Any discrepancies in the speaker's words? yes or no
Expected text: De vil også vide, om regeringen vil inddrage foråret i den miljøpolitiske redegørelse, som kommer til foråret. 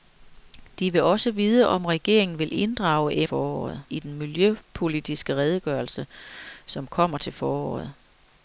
no